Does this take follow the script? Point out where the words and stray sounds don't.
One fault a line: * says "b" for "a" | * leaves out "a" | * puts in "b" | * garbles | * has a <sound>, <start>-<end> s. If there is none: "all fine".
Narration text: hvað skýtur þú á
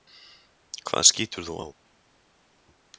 all fine